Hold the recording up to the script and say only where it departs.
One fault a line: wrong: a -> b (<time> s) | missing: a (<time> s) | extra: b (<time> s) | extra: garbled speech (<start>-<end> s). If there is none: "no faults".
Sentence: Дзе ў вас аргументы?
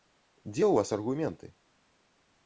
no faults